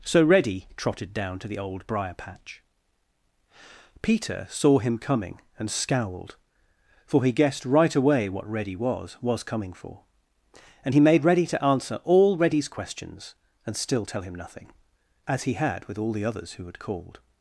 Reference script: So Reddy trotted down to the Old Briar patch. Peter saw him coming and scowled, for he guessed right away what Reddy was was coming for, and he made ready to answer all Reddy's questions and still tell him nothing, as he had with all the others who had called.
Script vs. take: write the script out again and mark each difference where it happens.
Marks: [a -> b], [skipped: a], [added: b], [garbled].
So Reddy trotted down to the Old Briar patch. Peter saw him coming and scowled, for he guessed right away what Reddy was was coming for, and he made ready to answer all Reddy's questions and still tell him nothing, as he had with all the others who had called.